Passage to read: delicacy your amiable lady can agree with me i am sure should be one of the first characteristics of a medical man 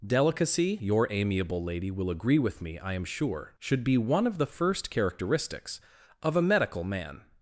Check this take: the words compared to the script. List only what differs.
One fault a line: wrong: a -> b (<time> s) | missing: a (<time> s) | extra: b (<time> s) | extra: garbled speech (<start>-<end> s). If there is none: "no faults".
wrong: can -> will (1.9 s)